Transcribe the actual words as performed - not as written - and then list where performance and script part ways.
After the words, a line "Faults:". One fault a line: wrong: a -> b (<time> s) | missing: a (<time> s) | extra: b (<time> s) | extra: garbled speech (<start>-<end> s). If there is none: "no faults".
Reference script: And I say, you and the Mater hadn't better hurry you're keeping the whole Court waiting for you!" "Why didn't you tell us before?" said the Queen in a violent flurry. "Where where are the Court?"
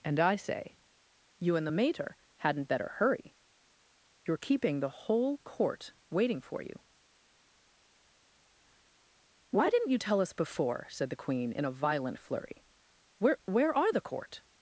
And I say, you and the Mater hadn't better hurry you're keeping the whole Court waiting for you!" "Why didn't you tell us before?" said the Queen in a violent flurry. "Where where are the Court?"
Faults:
no faults